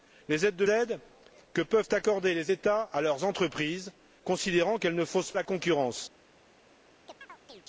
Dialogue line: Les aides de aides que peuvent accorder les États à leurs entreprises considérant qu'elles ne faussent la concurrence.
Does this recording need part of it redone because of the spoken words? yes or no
no